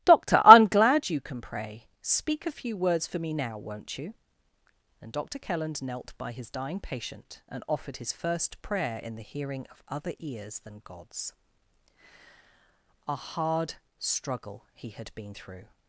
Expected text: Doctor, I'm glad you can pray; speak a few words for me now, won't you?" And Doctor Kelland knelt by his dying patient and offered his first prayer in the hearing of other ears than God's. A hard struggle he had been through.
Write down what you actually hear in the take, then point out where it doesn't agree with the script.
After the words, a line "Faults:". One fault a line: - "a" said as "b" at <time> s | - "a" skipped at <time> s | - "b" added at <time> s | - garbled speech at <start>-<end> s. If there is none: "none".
Doctor, I'm glad you can pray; speak a few words for me now, won't you?" And Doctor Kelland knelt by his dying patient and offered his first prayer in the hearing of other ears than God's. A hard struggle he had been through.
Faults:
none